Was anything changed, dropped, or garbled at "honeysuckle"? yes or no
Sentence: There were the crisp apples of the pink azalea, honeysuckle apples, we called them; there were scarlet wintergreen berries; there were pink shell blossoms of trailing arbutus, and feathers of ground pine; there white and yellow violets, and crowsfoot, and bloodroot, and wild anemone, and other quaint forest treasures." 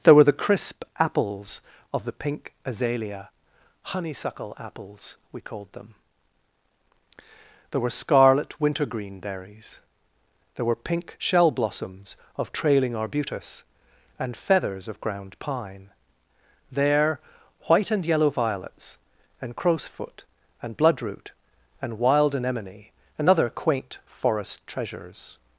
no